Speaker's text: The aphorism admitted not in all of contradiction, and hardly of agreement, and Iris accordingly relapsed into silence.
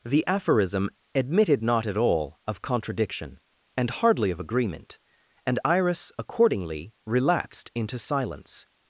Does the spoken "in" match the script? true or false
false